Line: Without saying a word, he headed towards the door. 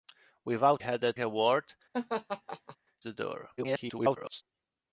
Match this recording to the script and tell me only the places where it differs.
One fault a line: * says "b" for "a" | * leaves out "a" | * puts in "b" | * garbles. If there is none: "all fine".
* says "headed" for "saying"
* leaves out "he headed towards"
* garbles